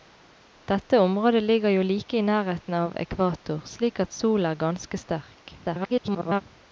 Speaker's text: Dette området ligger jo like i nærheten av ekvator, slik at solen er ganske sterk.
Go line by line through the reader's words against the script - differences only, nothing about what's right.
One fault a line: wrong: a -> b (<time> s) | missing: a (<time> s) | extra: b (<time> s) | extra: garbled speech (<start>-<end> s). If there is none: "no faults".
extra: garbled speech (5.6-6.4 s)